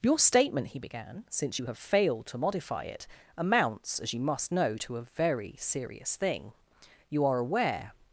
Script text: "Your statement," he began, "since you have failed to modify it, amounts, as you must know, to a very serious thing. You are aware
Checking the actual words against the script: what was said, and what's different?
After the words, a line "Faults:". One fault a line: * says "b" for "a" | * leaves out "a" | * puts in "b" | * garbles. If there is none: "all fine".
"Your statement," he began, "since you have failed to modify it, amounts, as you must know, to a very serious thing. You are aware
Faults:
all fine